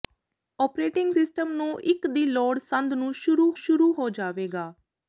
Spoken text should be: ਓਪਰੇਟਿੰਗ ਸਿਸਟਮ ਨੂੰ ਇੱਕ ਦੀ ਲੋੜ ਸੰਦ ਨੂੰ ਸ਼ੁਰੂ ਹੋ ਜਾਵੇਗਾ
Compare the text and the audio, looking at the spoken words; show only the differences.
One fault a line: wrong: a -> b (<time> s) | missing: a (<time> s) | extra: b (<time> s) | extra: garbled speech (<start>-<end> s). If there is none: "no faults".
extra: ਸ਼ੁਰੂ (3.6 s)